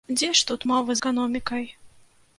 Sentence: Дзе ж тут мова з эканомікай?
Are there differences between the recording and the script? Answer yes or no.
yes